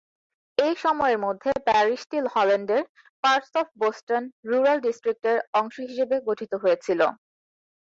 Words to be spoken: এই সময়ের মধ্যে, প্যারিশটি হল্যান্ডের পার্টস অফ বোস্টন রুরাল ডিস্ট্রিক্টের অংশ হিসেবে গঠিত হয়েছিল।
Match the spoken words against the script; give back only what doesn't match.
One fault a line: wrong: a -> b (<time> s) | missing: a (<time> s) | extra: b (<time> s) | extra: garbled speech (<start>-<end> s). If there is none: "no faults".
no faults